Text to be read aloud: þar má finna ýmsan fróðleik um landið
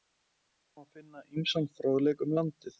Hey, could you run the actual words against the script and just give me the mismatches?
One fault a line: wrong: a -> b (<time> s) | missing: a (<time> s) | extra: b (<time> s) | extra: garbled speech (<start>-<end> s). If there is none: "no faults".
no faults